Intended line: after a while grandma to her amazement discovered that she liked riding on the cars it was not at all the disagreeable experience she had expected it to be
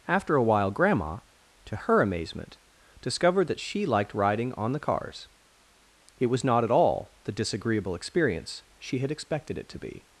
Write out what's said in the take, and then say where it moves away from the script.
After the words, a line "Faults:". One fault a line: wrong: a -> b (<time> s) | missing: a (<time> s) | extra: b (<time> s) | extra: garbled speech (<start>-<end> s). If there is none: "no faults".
after a while grandma to her amazement discovered that she liked riding on the cars it was not at all the disagreeable experience she had expected it to be
Faults:
no faults